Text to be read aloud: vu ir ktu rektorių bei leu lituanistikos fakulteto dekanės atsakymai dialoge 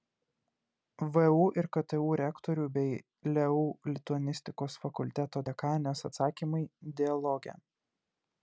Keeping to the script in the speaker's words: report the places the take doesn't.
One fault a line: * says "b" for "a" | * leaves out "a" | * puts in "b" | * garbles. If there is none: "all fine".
all fine